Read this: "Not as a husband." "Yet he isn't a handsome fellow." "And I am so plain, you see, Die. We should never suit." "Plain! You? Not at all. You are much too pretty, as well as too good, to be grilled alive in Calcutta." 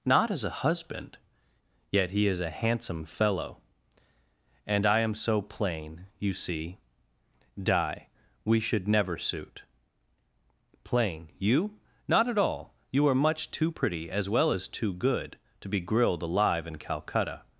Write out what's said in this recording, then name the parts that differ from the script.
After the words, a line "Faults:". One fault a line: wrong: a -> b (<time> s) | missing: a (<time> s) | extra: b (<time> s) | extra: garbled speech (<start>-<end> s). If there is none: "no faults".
"Not as a husband." "Yet he is a handsome fellow." "And I am so plain, you see, Die. We should never suit." "Plain! You? Not at all. You are much too pretty, as well as too good, to be grilled alive in Calcutta."
Faults:
wrong: isn't -> is (2.2 s)